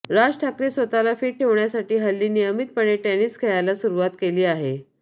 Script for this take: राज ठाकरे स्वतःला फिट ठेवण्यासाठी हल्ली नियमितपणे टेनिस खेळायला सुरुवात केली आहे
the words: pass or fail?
pass